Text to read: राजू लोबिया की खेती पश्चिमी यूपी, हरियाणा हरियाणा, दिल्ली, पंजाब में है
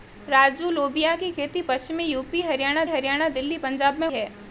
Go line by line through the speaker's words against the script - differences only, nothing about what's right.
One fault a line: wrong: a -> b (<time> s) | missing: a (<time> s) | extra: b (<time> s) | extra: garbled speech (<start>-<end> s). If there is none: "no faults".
no faults